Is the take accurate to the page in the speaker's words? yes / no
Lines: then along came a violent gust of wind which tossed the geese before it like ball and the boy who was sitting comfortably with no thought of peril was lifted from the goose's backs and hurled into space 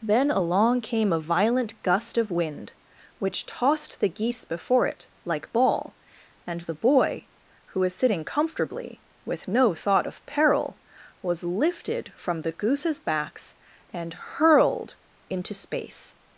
yes